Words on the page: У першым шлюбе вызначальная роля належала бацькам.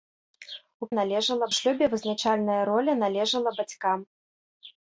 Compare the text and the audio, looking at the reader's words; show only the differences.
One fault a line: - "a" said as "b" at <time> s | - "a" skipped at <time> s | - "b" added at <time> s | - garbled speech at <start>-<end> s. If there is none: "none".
- "першым" said as "належала" at 1.0 s